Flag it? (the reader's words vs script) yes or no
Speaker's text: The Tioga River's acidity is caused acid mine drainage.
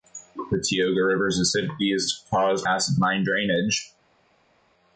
no